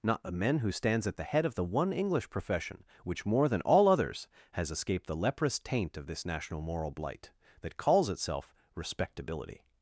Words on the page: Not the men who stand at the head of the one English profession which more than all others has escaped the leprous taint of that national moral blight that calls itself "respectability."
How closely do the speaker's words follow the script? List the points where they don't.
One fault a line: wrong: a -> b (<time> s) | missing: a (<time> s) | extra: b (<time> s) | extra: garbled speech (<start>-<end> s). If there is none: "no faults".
wrong: stand -> stands (0.7 s)
wrong: that -> this (6.1 s)